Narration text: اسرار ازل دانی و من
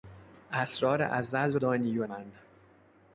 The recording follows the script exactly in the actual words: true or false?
true